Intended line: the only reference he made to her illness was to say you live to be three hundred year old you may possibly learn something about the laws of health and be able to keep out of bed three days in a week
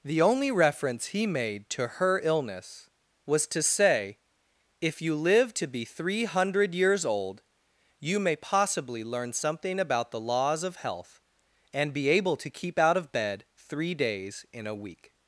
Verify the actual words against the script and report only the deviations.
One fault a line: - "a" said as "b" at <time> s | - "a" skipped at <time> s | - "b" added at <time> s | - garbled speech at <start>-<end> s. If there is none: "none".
- "if" added at 4.8 s
- "year" said as "years" at 6.7 s